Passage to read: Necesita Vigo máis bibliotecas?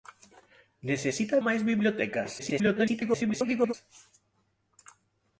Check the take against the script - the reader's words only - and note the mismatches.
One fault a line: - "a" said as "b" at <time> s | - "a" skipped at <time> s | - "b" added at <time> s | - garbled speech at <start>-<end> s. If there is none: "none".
- "Vigo" skipped at 1.4 s
- garbled speech at 2.4-3.7 s